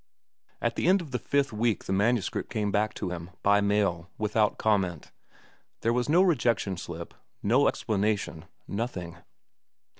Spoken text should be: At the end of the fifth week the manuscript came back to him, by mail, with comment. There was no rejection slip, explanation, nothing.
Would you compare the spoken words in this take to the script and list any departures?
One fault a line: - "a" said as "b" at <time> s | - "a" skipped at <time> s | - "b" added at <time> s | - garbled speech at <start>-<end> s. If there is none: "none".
- "with" said as "without" at 4.2 s
- "no" added at 7.4 s